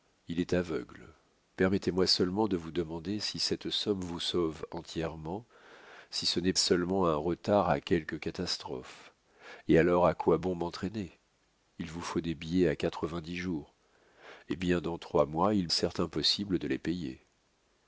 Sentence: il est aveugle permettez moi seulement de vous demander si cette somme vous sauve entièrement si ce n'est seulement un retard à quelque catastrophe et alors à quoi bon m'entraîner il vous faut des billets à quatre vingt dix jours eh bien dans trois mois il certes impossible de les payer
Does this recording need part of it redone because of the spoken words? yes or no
no